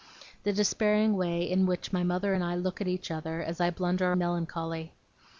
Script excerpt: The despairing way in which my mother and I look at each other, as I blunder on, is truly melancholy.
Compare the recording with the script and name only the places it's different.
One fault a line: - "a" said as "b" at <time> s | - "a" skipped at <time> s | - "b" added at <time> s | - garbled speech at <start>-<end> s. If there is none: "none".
- "on is truly" skipped at 4.1 s